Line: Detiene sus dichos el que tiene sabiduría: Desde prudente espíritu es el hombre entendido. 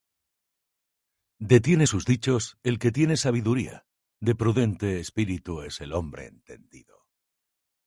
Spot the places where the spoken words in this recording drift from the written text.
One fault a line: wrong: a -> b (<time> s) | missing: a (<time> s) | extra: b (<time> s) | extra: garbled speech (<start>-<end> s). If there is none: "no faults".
wrong: Desde -> De (4.2 s)